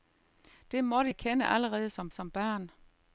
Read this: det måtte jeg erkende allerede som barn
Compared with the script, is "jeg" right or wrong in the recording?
wrong